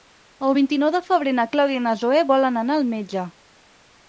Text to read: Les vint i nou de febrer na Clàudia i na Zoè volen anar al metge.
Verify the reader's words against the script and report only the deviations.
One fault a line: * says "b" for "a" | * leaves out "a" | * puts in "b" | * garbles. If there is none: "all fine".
* says "El" for "Les"